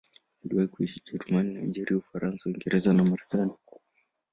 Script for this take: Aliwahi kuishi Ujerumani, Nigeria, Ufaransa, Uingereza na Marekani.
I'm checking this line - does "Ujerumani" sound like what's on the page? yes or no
yes